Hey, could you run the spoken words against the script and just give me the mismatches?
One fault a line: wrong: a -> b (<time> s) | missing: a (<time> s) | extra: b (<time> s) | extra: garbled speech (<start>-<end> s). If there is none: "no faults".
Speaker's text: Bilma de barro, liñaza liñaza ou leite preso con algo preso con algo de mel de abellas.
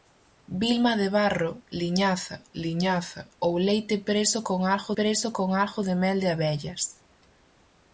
no faults